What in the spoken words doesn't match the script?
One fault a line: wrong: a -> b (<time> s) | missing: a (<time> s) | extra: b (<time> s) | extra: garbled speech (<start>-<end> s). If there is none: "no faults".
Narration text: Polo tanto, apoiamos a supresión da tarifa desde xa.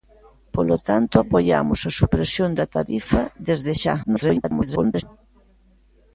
extra: garbled speech (4.0-5.0 s)